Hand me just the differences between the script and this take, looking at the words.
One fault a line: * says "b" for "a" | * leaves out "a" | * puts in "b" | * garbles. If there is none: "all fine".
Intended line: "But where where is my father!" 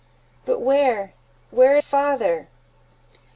* leaves out "is my"